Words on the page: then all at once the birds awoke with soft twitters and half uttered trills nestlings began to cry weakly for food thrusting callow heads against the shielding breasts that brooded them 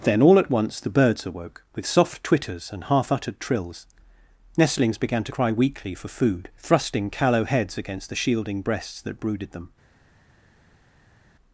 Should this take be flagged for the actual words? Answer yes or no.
no